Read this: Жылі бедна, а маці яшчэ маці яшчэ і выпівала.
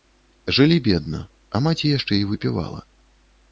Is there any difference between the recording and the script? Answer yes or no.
yes